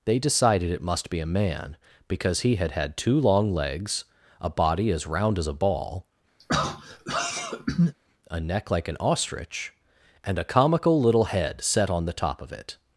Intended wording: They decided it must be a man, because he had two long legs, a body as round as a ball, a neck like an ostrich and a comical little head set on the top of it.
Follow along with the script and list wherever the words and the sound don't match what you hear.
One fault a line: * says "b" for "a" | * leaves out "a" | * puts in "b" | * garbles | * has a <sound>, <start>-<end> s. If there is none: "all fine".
* puts in "had"
* has a throat clearing, 6.4-7.9 s